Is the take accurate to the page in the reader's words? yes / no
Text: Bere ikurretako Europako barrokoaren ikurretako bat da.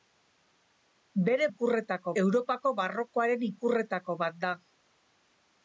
yes